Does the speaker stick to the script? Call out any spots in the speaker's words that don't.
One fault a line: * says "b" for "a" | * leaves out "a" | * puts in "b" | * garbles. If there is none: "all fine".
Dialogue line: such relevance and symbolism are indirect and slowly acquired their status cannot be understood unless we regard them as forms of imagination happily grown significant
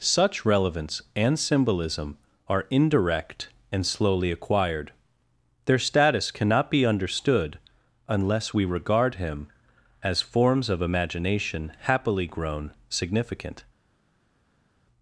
* says "him" for "them"